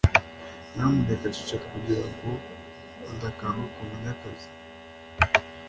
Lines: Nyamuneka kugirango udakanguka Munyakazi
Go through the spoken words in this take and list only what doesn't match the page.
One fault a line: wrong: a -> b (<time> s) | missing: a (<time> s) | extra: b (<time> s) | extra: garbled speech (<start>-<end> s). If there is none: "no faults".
extra: ceceka (1.4 s)